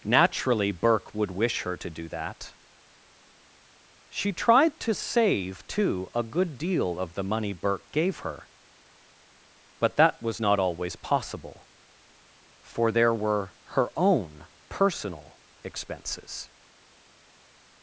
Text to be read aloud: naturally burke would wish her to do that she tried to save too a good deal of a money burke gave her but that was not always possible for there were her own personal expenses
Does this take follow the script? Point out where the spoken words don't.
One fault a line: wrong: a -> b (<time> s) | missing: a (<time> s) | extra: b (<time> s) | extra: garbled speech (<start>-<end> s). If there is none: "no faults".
wrong: a -> the (7.1 s)